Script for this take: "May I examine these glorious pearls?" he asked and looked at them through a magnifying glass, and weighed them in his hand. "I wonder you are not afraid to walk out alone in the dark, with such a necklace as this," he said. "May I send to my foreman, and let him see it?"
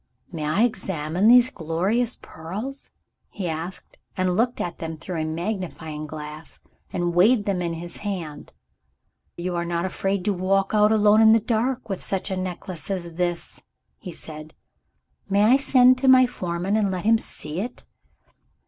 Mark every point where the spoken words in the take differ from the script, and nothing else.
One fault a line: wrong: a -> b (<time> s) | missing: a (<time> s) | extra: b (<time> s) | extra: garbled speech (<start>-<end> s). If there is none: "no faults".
missing: I wonder (8.5 s)